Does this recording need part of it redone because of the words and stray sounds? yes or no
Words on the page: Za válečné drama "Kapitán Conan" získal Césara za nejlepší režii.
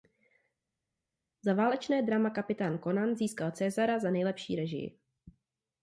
no